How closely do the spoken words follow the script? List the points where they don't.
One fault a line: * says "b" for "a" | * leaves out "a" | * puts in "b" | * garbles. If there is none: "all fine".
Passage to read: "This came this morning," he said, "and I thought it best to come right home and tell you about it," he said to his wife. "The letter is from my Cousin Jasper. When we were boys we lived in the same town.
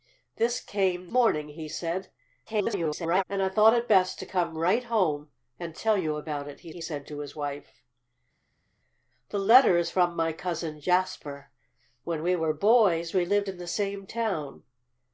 * leaves out "this"
* garbles
* puts in "he"